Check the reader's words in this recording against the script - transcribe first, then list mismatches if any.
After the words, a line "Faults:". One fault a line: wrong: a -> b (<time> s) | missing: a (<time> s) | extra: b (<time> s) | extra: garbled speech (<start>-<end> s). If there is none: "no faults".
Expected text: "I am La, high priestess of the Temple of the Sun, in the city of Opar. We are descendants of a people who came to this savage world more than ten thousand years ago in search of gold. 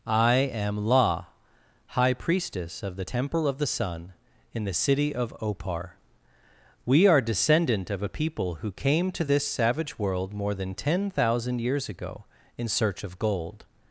"I am La, high priestess of the Temple of the Sun, in the city of Opar. We are descendant of a people who came to this savage world more than ten thousand years ago in search of gold.
Faults:
wrong: descendants -> descendant (7.2 s)